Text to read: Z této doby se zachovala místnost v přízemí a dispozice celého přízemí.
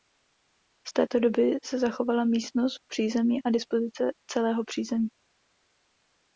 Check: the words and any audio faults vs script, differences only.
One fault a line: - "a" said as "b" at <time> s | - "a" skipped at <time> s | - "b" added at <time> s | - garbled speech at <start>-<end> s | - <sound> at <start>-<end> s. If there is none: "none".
none